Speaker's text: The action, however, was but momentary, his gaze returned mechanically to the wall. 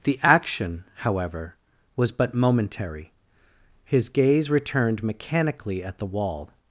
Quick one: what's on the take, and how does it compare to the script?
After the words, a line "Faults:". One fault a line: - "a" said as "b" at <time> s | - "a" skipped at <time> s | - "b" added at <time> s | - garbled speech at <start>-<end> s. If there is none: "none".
The action, however, was but momentary, his gaze returned mechanically at the wall.
Faults:
- "to" said as "at" at 5.8 s